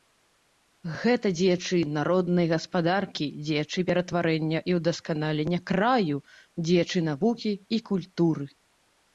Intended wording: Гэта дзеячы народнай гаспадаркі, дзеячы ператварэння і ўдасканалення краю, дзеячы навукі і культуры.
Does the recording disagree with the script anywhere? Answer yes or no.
no